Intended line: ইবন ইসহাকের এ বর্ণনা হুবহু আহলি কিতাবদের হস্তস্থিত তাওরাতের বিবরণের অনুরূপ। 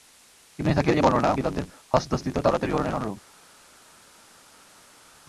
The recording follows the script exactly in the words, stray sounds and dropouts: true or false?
false